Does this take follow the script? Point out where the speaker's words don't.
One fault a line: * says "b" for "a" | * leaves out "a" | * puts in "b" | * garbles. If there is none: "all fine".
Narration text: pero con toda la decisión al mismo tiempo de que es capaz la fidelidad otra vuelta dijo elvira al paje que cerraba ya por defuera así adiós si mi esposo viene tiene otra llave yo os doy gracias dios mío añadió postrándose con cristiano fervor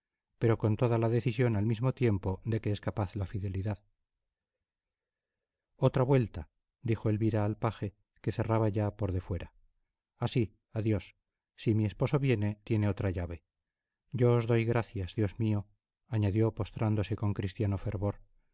all fine